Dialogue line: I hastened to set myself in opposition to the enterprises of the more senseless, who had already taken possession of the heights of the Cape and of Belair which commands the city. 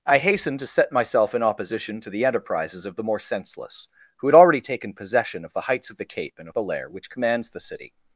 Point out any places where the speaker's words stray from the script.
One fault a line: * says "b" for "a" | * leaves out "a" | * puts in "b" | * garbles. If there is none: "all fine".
all fine